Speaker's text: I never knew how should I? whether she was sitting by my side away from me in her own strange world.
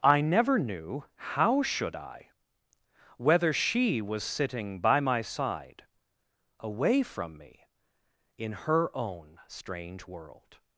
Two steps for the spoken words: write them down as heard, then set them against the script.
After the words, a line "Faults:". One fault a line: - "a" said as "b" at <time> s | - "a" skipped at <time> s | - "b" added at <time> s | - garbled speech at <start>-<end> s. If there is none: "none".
I never knew how should I? whether she was sitting by my side away from me in her own strange world.
Faults:
none